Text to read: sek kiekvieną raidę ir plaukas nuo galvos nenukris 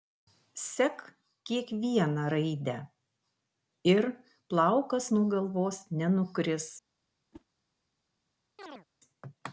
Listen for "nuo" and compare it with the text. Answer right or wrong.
right